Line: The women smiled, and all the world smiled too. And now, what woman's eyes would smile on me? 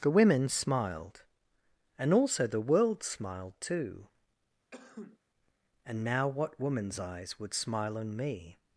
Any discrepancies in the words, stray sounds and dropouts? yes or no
yes